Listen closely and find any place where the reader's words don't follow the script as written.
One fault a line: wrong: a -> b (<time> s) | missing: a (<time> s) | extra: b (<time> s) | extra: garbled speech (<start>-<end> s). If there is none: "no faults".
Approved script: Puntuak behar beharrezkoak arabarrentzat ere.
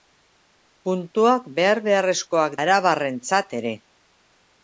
no faults